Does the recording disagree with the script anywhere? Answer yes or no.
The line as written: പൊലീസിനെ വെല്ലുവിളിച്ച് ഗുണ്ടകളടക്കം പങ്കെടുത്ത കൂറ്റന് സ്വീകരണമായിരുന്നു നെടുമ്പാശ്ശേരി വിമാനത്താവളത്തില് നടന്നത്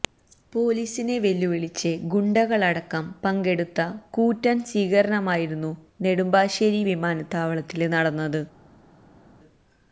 no